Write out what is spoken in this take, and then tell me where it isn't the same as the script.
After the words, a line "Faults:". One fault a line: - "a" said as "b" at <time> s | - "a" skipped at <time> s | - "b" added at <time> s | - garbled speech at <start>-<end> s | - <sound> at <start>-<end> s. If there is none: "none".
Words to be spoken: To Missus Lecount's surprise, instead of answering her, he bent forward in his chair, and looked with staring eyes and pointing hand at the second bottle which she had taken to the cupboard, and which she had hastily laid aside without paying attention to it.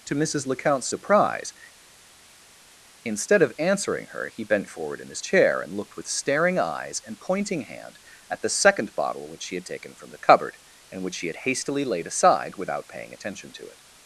To Missus Lecount's surprise, instead of answering her, he bent forward in his chair, and looked with staring eyes and pointing hand at the second bottle which she had taken from the cupboard, and which she had hastily laid aside without paying attention to it.
Faults:
- "to" said as "from" at 9.9 s